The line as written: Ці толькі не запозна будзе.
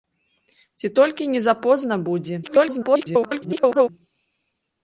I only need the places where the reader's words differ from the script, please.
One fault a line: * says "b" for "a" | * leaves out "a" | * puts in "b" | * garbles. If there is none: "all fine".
* garbles